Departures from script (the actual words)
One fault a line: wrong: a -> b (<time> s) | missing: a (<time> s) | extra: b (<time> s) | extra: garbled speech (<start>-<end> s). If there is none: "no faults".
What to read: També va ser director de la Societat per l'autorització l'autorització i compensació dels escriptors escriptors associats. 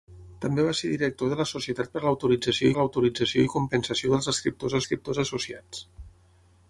no faults